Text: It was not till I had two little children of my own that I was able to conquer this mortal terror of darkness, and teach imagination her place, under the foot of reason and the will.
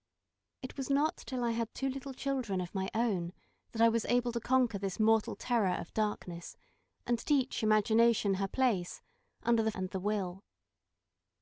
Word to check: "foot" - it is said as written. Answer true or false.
false